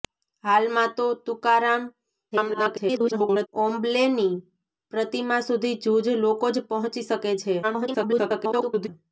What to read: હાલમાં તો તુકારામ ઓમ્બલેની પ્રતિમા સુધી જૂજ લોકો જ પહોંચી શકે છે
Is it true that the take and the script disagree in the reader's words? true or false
true